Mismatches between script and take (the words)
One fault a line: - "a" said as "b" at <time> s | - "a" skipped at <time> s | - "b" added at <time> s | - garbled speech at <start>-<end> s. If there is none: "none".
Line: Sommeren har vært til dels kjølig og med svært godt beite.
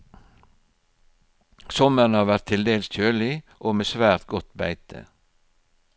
none